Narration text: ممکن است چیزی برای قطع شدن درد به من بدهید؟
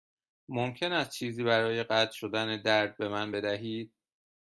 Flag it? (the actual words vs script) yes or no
no